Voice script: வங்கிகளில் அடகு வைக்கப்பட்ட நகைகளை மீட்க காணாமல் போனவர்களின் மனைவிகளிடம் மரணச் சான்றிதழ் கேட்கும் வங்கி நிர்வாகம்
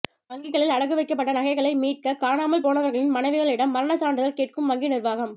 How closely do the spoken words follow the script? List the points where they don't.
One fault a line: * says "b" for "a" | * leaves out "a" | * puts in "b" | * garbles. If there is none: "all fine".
all fine